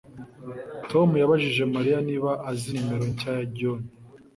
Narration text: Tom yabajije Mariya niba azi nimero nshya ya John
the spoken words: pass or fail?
pass